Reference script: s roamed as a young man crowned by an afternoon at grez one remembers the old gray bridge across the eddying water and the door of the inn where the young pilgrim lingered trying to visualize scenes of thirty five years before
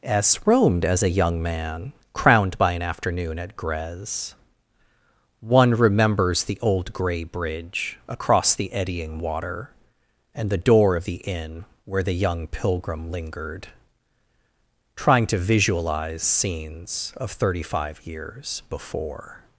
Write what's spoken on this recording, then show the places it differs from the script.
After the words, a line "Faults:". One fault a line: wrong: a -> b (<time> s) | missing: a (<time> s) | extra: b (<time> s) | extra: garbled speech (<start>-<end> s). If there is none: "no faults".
s roamed as a young man crowned by an afternoon at grez one remembers the old gray bridge across the eddying water and the door of the inn where the young pilgrim lingered trying to visualize scenes of thirty five years before
Faults:
no faults